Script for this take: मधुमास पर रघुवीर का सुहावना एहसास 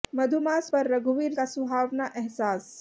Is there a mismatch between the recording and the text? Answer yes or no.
no